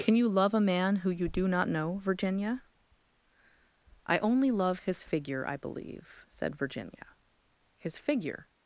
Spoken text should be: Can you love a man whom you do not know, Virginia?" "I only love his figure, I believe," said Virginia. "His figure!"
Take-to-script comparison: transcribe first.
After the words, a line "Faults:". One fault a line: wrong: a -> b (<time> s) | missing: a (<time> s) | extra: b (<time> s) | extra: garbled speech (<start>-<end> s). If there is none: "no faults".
Can you love a man who you do not know, Virginia?" "I only love his figure, I believe," said Virginia. "His figure!"
Faults:
wrong: whom -> who (1.0 s)